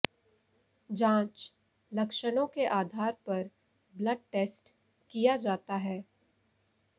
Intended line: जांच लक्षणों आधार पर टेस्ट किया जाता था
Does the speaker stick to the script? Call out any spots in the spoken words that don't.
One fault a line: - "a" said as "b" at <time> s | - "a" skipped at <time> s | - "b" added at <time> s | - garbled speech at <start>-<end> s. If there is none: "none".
- "के" added at 2.5 s
- "ब्लड" added at 3.9 s
- "था" said as "है" at 5.8 s